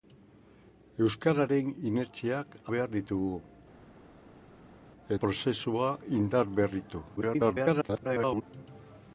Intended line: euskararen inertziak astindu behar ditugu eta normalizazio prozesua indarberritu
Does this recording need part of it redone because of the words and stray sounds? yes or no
yes